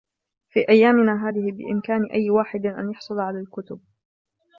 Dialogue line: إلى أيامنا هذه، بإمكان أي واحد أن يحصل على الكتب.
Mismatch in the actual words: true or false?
true